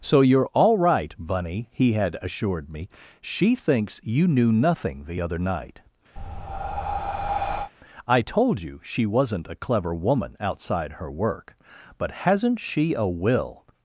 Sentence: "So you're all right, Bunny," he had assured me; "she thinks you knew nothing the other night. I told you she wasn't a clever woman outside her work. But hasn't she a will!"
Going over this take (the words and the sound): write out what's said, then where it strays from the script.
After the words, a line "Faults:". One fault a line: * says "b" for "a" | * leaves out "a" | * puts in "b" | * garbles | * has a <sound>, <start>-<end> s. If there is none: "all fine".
"So you're all right, Bunny," he had assured me; "she thinks you knew nothing the other night. I told you she wasn't a clever woman outside her work. But hasn't she a will!"
Faults:
* has a breath, 6.2-7.7 s